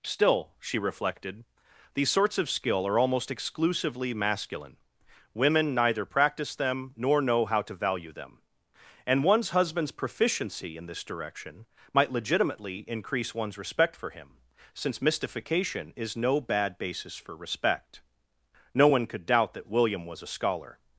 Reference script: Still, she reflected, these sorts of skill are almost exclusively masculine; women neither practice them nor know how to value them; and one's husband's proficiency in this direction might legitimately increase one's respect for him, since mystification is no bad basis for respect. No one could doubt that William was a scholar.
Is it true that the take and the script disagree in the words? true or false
false